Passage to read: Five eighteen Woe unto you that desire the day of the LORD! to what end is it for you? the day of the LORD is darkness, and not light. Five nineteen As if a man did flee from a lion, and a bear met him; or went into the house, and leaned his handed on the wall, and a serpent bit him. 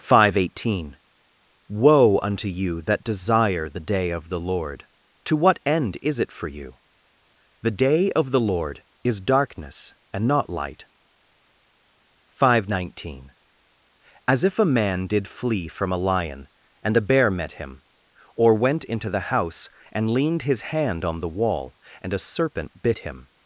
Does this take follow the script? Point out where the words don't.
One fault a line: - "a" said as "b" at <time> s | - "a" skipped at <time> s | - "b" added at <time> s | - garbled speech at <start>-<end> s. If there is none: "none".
- "handed" said as "hand" at 20.7 s